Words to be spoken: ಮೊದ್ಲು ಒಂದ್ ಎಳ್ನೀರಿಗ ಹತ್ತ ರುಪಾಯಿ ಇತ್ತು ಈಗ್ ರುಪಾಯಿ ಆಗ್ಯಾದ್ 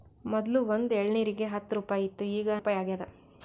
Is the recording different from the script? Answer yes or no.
no